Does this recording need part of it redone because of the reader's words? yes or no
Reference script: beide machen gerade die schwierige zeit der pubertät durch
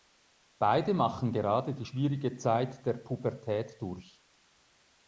no